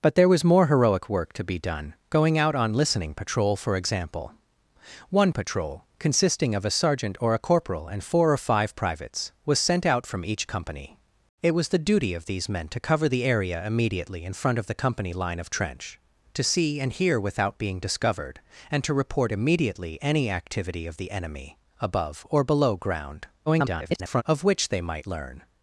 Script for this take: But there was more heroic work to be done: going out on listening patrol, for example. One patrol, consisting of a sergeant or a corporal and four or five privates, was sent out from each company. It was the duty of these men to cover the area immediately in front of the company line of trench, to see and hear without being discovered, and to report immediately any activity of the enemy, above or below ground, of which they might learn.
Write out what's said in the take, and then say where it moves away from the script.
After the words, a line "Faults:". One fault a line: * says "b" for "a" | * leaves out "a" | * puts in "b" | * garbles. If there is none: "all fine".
But there was more heroic work to be done: going out on listening patrol, for example. One patrol, consisting of a sergeant or a corporal and four or five privates, was sent out from each company. It was the duty of these men to cover the area immediately in front of the company line of trench, to see and hear without being discovered, and to report immediately any activity of the enemy, above or below ground, [garbled] of which they might learn.
Faults:
* garbles